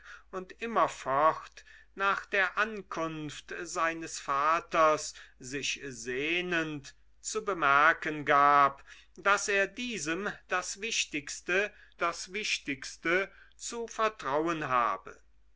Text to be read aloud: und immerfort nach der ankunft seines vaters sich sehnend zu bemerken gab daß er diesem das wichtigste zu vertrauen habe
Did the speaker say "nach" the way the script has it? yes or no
yes